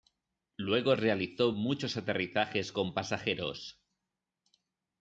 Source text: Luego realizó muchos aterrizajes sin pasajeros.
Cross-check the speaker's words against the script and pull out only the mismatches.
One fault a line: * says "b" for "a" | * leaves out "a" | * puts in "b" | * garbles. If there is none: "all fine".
* says "con" for "sin"